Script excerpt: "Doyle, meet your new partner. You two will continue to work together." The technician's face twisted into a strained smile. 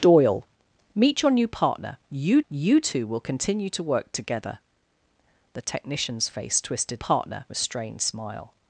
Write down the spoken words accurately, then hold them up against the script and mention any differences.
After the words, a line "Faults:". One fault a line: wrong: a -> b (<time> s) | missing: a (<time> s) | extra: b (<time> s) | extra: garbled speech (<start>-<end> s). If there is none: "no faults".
"Doyle, meet your new partner. You you two will continue to work together." The technician's face twisted partner a strained smile.
Faults:
extra: you (2.5 s)
wrong: into -> partner (6.9 s)